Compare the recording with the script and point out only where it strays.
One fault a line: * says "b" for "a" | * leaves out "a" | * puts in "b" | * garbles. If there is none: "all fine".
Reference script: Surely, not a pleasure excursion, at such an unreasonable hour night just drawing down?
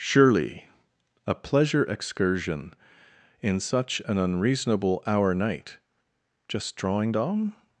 * leaves out "not"
* says "in" for "at"